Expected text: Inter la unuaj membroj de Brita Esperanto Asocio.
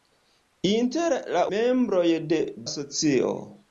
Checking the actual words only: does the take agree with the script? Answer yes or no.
no